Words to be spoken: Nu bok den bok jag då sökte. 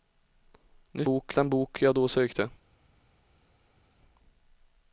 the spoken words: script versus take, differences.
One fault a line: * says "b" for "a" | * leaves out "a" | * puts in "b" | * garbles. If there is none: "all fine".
all fine